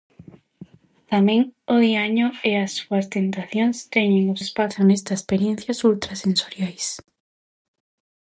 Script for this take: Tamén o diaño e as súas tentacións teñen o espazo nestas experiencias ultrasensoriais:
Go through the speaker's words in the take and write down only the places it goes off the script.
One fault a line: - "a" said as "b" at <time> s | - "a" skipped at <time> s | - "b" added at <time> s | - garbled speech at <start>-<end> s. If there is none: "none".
none